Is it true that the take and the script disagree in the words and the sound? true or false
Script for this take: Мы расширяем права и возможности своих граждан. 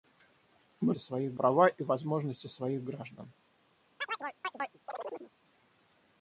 true